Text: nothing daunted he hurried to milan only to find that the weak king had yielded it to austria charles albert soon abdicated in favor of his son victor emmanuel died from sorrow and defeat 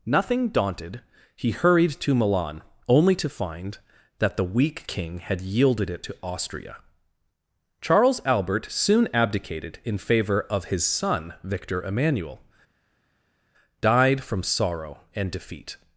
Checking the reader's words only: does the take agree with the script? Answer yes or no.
yes